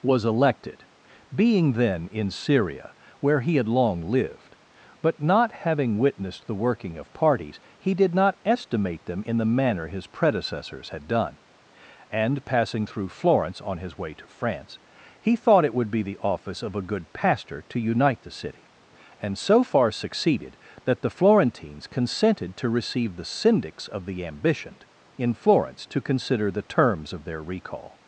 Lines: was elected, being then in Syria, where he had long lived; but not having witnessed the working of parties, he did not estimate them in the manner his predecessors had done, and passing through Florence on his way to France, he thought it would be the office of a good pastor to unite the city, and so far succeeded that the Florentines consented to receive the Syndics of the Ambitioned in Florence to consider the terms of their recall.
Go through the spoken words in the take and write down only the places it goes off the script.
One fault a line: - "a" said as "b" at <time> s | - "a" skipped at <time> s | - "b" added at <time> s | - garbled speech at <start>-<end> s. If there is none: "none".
none